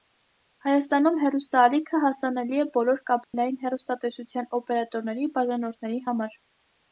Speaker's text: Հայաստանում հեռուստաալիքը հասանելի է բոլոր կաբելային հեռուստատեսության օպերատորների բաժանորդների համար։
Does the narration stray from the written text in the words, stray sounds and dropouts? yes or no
yes